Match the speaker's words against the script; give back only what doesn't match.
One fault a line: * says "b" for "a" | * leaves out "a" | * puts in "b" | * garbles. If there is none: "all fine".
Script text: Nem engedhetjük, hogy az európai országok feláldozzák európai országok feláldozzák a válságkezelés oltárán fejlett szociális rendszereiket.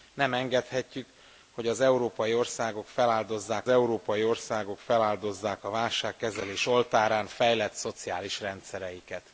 all fine